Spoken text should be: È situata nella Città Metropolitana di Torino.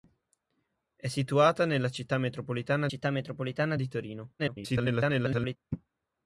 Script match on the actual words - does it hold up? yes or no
no